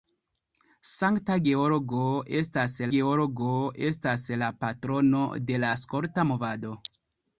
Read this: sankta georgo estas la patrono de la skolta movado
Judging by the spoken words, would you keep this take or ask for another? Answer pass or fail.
fail